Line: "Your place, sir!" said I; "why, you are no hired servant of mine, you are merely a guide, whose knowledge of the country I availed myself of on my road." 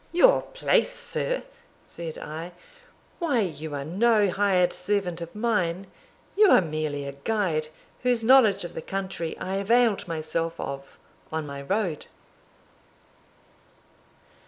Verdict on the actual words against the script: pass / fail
pass